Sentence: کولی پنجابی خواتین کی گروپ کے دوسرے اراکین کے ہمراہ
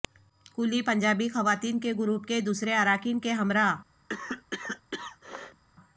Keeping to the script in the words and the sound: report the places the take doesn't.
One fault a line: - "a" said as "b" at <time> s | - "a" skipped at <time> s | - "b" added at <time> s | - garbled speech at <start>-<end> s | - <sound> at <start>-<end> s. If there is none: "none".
- "کی" said as "کے" at 1.8 s
- cough at 4.1-5.6 s